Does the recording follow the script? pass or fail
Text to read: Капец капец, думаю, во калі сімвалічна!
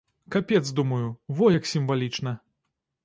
fail